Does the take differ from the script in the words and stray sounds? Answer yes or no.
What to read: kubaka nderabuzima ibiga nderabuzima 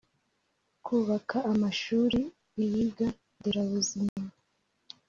yes